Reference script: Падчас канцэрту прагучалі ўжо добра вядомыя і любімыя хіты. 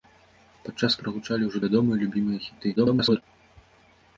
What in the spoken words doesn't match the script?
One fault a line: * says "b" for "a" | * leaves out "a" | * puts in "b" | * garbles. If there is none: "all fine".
* leaves out "канцэрту"
* leaves out "добра"
* garbles